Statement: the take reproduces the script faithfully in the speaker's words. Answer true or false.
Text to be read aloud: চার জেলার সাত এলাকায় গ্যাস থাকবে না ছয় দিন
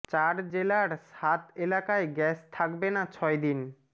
true